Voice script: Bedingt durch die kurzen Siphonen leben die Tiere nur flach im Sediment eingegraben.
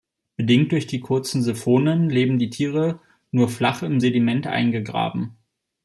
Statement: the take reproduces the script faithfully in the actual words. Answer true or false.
true